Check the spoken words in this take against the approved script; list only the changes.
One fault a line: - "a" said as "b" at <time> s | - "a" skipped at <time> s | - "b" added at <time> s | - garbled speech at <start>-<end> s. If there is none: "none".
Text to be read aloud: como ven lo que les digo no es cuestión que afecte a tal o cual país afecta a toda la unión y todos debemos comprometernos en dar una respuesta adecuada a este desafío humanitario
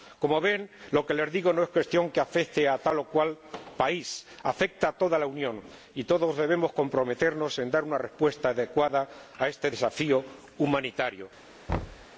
none